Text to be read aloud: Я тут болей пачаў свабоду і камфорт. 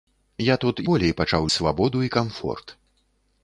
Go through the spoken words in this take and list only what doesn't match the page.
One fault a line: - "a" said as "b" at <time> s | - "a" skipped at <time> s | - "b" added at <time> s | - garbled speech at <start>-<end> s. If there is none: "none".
none